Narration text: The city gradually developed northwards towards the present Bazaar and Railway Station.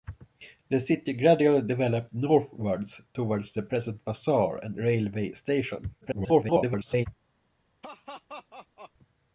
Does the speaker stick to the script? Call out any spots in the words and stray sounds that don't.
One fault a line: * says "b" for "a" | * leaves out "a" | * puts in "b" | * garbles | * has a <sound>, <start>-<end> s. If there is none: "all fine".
* garbles
* has a laugh, 7.8-8.9 s